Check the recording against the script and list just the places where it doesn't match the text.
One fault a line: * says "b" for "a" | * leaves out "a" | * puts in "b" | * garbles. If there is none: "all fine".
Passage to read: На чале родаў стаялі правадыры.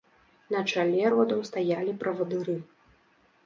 all fine